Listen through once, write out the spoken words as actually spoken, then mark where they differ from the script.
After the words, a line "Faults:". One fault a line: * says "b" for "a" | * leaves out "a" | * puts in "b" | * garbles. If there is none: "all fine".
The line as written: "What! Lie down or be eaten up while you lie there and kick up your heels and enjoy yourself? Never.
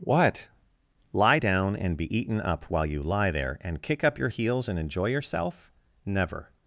"What! Lie down and be eaten up while you lie there and kick up your heels and enjoy yourself? Never.
Faults:
* says "and" for "or"